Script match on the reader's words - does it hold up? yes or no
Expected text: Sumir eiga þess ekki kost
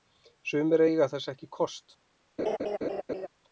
yes